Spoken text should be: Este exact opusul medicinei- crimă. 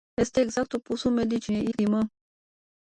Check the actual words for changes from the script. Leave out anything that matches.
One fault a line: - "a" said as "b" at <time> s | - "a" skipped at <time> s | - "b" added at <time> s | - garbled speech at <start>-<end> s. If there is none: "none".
none